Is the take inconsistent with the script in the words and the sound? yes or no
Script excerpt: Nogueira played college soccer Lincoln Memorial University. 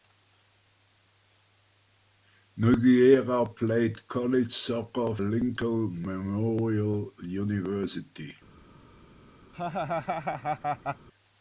yes